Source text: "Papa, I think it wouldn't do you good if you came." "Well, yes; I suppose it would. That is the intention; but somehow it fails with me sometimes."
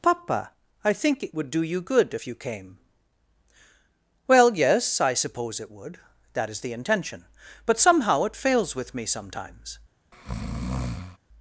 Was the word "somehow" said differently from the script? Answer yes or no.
no